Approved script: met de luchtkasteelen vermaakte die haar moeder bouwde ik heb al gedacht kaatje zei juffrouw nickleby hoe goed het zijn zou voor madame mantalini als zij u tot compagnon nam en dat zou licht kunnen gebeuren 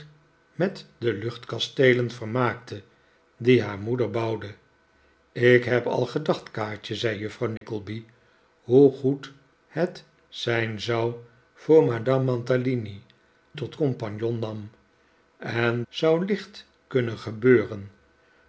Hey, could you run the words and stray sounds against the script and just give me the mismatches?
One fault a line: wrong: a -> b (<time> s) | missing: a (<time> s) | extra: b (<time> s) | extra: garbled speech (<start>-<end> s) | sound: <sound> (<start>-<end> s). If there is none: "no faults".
sound: dropout (7.6-7.6 s)
missing: als zij u (13.0 s)
missing: dat (15.8 s)